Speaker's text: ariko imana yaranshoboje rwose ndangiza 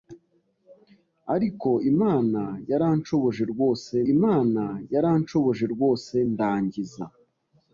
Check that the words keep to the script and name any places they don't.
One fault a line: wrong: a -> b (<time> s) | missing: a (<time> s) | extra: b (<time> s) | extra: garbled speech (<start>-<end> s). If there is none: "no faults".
extra: imana yaranshoboje rwose (4.1 s)